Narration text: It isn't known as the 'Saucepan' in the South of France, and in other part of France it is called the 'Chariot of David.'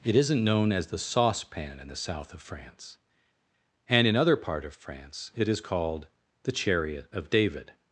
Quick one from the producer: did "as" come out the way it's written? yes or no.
yes